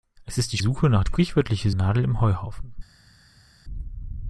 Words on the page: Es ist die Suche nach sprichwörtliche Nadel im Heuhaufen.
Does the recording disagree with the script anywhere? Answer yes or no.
no